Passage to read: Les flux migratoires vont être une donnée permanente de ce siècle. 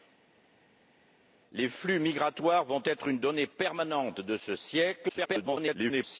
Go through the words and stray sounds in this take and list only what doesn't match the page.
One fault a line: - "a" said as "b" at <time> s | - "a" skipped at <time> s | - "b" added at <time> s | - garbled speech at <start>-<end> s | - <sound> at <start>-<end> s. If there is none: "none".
- garbled speech at 5.1-6.2 s